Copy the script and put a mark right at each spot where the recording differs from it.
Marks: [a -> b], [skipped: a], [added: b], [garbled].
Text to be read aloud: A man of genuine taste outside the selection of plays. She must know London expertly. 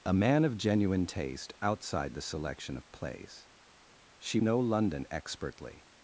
A man of genuine taste outside the selection of plays. She [skipped: must] know London expertly.